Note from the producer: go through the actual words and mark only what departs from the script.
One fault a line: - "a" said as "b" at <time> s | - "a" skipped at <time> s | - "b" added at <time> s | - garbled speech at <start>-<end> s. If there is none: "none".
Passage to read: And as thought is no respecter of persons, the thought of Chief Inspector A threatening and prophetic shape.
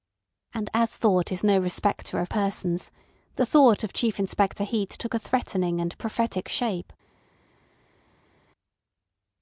- "Heat took" added at 4.6 s